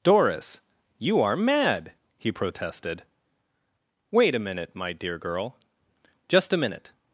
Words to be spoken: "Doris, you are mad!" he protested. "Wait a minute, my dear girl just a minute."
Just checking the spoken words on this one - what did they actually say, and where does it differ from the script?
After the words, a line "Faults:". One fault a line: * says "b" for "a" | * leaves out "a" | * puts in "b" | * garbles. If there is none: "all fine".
"Doris, you are mad!" he protested. "Wait a minute, my dear girl just a minute."
Faults:
all fine